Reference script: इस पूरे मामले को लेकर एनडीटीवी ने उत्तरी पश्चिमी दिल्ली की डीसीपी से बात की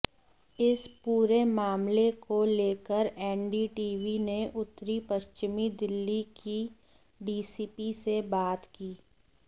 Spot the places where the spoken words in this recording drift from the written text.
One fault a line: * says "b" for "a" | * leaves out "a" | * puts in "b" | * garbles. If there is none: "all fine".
all fine